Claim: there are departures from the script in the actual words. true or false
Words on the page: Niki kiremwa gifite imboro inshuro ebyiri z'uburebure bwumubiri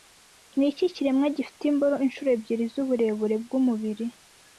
false